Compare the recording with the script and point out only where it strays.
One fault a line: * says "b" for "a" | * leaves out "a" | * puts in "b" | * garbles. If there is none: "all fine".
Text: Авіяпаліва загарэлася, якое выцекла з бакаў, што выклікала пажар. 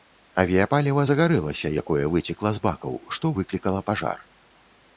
all fine